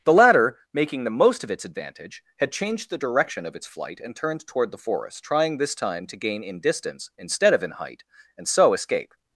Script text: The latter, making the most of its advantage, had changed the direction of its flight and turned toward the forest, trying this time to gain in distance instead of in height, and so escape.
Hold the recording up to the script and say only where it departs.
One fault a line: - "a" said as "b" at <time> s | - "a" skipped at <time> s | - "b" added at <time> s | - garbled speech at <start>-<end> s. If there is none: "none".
none